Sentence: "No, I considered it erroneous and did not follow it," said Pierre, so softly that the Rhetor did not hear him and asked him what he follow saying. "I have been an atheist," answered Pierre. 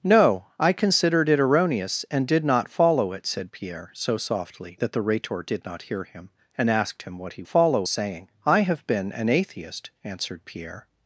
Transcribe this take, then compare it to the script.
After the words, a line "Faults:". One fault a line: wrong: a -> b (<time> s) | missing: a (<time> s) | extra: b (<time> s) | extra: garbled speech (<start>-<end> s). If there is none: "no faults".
"No, I considered it erroneous and did not follow it," said Pierre, so softly that the Rhetor did not hear him and asked him what he follow saying. "I have been an atheist," answered Pierre.
Faults:
no faults